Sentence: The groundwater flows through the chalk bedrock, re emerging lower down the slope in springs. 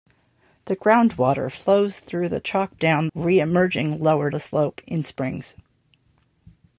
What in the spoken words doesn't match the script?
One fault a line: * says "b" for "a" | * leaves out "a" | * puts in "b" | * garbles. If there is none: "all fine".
* says "down" for "bedrock"
* leaves out "down"